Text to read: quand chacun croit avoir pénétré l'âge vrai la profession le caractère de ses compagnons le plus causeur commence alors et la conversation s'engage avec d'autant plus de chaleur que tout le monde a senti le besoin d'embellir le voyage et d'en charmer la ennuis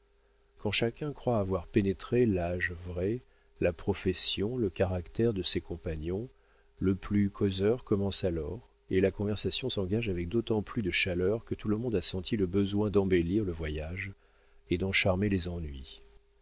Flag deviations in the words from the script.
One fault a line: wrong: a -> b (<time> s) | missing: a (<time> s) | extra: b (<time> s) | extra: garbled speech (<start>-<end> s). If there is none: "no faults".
wrong: la -> les (15.3 s)